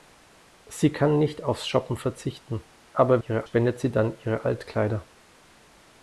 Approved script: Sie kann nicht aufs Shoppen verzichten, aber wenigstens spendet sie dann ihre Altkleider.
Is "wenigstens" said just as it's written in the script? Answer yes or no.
no